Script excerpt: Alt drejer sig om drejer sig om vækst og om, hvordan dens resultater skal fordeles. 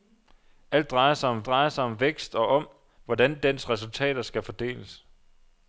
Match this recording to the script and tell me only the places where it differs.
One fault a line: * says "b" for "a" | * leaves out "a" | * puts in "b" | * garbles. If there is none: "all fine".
all fine